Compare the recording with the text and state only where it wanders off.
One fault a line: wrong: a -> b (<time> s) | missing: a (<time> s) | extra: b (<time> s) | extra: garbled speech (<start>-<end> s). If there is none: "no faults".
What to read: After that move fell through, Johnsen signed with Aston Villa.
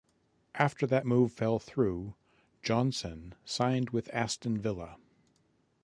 no faults